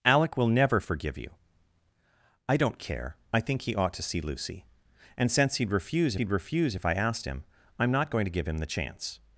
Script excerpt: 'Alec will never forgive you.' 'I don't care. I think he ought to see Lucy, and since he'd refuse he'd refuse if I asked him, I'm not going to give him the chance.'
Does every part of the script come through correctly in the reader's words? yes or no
yes